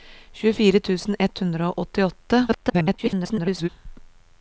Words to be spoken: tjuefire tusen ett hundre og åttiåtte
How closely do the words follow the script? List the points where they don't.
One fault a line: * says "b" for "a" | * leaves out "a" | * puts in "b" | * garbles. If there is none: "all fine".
* garbles